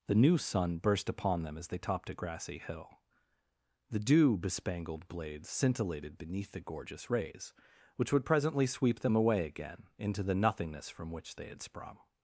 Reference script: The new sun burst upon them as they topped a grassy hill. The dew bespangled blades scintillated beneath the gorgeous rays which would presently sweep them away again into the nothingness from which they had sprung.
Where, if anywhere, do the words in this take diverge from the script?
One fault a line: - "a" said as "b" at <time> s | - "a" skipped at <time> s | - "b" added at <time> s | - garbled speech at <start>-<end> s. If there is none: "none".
none